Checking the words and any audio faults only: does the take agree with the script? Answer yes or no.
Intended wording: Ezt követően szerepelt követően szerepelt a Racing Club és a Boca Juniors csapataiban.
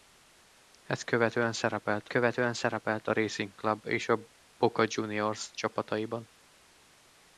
yes